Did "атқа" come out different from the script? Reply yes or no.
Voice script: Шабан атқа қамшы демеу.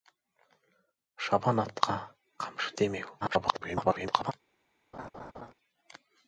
no